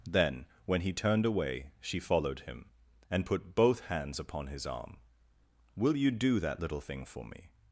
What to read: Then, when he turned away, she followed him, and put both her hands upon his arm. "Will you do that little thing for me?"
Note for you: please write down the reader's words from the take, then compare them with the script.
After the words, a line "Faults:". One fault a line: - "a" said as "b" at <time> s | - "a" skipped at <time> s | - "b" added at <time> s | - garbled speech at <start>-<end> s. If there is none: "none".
Then, when he turned away, she followed him, and put both hands upon his arm. "Will you do that little thing for me?"
Faults:
- "her" skipped at 3.8 s